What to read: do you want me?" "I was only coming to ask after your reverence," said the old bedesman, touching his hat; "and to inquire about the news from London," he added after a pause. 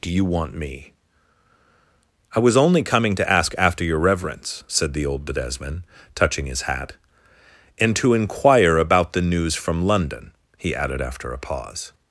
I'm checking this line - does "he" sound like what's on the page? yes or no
yes